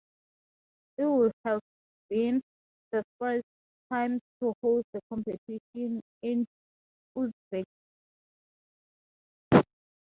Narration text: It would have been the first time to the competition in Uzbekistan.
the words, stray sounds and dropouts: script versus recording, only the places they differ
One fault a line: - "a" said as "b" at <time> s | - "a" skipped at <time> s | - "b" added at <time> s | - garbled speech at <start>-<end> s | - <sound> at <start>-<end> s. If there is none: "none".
- "host" added at 4.6 s